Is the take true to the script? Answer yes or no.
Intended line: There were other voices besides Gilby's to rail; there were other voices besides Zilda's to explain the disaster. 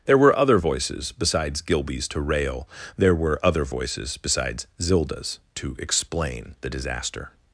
yes